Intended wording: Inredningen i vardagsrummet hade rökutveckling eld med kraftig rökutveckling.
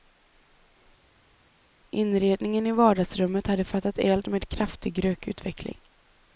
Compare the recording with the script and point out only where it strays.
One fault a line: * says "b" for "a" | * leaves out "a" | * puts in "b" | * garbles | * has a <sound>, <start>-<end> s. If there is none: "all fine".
* says "fattat" for "rökutveckling"